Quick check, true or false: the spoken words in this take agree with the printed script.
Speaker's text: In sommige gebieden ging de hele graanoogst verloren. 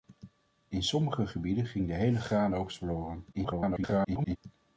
false